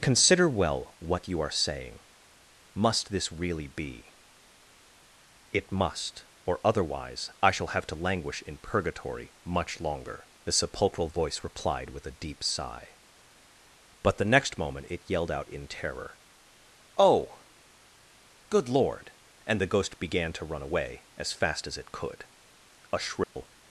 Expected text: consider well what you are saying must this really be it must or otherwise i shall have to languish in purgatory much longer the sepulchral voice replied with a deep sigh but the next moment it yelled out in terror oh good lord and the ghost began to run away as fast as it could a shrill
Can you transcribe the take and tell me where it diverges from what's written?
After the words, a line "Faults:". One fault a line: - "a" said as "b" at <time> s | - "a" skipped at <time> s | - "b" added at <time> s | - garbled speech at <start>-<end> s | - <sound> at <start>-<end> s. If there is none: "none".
consider well what you are saying must this really be it must or otherwise i shall have to languish in purgatory much longer the sepulchral voice replied with a deep sigh but the next moment it yelled out in terror oh good lord and the ghost began to run away as fast as it could a shrill
Faults:
- dropout at 23.2-23.4 s